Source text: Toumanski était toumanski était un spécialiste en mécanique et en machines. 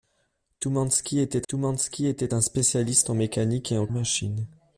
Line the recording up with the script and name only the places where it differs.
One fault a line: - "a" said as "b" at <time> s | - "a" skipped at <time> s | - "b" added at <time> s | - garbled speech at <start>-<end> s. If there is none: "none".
none